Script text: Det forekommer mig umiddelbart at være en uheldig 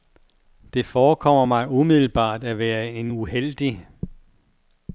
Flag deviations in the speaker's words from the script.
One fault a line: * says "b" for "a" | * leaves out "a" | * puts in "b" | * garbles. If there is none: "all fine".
all fine